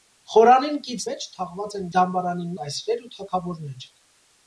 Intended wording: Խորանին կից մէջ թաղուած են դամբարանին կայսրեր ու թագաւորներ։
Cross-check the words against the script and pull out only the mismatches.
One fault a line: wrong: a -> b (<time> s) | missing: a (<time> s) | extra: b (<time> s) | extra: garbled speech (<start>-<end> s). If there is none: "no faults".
no faults